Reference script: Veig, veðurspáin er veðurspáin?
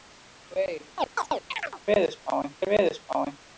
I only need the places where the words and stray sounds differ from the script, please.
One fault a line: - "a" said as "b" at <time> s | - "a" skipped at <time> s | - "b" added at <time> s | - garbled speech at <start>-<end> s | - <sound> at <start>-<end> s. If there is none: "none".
- chirp at 1.0-1.8 s